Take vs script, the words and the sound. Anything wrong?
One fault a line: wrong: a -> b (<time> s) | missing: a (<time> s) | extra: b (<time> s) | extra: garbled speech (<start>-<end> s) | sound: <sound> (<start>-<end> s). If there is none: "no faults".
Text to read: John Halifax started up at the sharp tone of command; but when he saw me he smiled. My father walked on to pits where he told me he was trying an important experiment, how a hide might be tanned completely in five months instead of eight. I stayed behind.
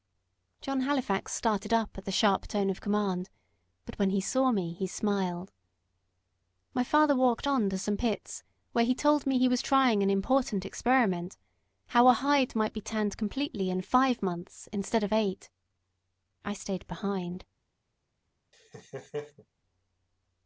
extra: some (7.8 s)
sound: laugh (18.5-19.5 s)